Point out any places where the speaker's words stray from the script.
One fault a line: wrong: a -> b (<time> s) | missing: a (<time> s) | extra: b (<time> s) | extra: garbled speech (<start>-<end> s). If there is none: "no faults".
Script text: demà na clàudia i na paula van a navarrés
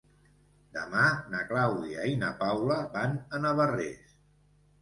no faults